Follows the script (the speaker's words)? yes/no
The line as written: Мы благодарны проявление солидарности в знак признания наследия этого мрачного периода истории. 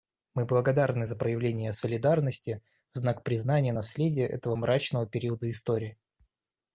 no